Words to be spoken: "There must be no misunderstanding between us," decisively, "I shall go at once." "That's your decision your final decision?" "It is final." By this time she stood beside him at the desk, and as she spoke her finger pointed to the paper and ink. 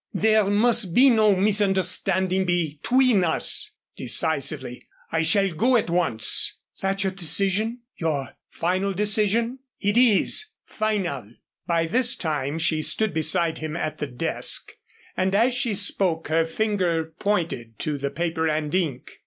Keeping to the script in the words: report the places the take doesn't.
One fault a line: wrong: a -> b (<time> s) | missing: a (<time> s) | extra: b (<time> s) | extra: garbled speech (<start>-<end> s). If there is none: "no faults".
no faults